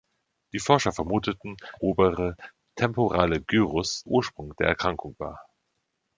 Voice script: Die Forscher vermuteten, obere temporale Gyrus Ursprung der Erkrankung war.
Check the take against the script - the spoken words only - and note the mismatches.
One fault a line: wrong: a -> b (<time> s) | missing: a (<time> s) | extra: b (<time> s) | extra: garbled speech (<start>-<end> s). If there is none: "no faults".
no faults